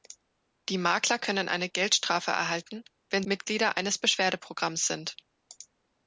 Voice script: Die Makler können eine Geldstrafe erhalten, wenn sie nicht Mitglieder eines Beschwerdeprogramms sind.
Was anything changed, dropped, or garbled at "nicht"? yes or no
yes